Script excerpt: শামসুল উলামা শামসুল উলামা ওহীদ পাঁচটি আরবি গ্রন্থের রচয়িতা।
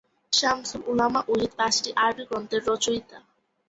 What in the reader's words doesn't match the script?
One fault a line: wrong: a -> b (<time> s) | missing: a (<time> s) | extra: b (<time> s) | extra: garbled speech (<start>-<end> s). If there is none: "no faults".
missing: শামসুল উলামা (1.2 s)